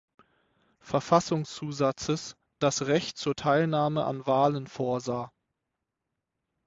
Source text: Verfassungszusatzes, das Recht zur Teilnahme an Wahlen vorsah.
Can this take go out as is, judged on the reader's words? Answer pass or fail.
pass